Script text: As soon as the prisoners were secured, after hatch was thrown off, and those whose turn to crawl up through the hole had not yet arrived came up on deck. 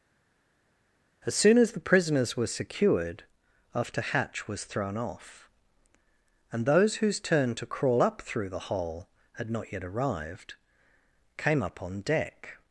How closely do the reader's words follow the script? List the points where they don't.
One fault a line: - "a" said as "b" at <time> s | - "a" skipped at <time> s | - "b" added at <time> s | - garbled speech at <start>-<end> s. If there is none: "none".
none